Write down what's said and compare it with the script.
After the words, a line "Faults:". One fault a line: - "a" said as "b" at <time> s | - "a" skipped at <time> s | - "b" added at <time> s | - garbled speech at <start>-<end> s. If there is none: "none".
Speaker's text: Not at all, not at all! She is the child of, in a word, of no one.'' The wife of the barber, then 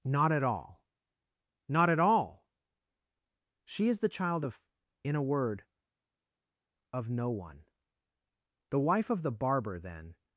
Not at all, not at all! She is the child of, in a word, of no one.'' The wife of the barber, then
Faults:
none